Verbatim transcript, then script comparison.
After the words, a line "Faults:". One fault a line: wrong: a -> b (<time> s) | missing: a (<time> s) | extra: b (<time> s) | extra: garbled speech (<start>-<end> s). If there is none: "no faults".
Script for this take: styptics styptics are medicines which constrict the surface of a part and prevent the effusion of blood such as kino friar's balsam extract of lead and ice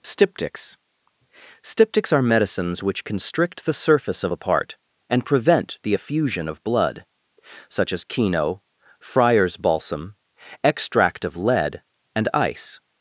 styptics styptics are medicines which constrict the surface of a part and prevent the effusion of blood such as kino friar's balsam extract of lead and ice
Faults:
no faults